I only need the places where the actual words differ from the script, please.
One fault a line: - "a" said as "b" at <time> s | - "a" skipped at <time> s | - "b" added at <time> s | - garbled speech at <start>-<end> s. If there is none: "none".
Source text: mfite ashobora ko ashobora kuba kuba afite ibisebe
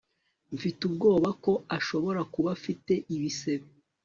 - "ashobora" said as "ubwoba" at 0.9 s
- "kuba" skipped at 2.5 s